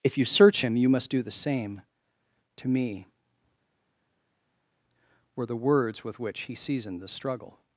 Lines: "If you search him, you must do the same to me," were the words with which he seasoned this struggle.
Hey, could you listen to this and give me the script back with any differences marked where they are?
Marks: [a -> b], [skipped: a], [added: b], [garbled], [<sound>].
"If you search him, you must do the same to me," were the words with which he seasoned [this -> the] struggle.